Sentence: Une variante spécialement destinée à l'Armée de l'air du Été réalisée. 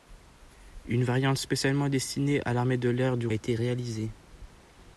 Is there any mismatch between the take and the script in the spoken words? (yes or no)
no